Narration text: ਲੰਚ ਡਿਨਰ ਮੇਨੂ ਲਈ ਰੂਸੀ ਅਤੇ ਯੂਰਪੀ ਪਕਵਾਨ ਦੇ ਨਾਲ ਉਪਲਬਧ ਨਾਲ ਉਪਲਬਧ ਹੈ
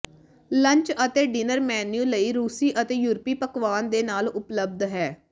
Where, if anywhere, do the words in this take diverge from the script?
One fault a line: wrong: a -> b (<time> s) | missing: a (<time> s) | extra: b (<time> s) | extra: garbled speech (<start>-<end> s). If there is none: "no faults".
extra: ਅਤੇ (1.1 s)
missing: ਨਾਲ ਉਪਲਬਧ (4.8 s)